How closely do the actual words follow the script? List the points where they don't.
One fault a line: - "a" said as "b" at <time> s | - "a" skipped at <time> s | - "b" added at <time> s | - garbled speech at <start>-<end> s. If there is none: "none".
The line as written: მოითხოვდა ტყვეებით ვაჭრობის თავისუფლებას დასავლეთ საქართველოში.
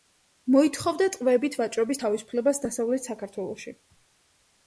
none